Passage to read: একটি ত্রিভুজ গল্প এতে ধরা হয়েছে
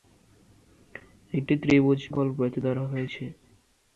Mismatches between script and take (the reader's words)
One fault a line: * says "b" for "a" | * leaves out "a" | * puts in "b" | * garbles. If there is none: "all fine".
all fine